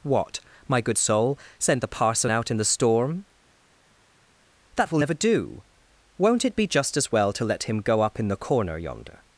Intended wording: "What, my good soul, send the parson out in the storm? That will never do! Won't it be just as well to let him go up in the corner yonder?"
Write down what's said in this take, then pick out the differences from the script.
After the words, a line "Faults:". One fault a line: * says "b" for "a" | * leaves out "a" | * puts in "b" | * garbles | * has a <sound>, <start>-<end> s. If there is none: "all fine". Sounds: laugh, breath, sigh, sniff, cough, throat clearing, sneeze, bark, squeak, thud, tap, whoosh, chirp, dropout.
"What, my good soul, send the parson out in the storm? That will never do! Won't it be just as well to let him go up in the corner yonder?"
Faults:
all fine